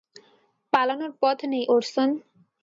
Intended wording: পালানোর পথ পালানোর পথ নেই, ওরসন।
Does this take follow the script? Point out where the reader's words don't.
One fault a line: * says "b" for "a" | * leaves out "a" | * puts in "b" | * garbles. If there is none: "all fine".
* leaves out "পালানোর পথ"